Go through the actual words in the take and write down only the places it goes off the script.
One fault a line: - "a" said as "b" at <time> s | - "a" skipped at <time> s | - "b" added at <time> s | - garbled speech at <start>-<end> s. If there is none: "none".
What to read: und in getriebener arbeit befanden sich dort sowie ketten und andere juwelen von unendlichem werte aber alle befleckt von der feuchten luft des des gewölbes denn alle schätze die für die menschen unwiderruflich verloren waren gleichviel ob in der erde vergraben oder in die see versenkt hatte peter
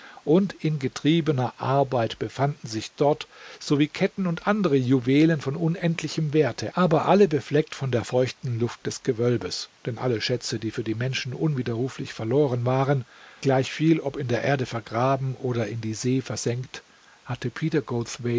- "des" skipped at 9.0 s